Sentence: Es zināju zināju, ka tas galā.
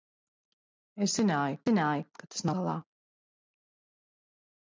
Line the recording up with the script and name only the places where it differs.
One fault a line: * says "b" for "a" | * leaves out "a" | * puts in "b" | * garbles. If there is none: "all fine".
all fine